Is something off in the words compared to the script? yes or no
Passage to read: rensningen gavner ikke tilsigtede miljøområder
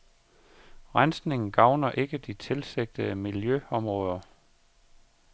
yes